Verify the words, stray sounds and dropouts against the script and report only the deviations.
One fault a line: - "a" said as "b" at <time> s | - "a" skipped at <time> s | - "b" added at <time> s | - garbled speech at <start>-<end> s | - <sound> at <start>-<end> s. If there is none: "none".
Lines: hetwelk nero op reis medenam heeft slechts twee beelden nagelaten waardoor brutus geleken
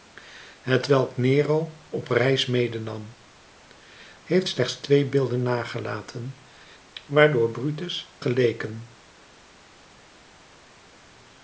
none